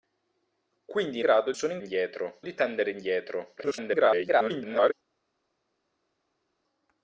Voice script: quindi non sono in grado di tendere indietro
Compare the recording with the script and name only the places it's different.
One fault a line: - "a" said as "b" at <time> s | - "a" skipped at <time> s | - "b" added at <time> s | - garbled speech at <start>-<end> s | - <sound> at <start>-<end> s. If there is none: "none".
- "non" said as "grado" at 1.2 s
- "grado" said as "indietro" at 1.8 s
- garbled speech at 3.6-4.9 s